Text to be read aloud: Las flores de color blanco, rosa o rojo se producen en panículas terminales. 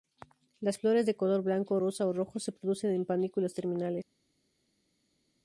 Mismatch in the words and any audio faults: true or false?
false